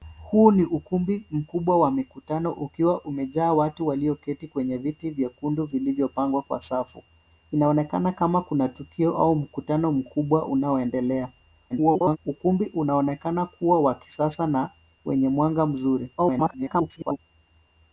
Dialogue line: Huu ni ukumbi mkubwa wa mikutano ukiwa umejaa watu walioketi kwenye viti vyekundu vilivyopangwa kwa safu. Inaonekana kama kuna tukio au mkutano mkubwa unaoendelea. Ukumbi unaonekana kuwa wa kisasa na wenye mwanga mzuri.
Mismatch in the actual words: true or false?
true